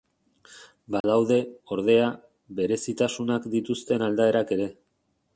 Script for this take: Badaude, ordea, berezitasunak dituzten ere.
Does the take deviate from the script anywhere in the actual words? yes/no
yes